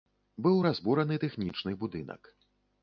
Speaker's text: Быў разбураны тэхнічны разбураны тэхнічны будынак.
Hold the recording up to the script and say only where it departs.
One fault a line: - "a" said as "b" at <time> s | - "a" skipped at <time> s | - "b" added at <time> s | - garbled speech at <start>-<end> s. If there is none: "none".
- "разбураны тэхнічны" skipped at 1.7 s